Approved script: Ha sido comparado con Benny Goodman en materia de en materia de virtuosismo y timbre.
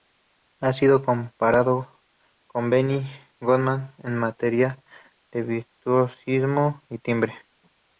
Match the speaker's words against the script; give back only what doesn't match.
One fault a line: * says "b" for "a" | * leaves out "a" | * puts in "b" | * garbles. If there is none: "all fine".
* leaves out "en materia de"